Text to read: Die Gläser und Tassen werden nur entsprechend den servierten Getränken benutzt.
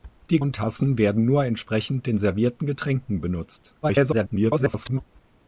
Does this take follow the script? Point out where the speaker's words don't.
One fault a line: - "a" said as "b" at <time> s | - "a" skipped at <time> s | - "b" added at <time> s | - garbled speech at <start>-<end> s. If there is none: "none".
- "Gläser" skipped at 0.4 s
- garbled speech at 3.8-5.0 s